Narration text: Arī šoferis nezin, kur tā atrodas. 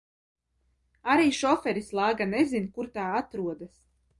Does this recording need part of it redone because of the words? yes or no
yes